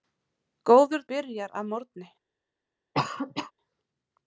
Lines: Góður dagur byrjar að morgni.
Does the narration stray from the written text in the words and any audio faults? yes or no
yes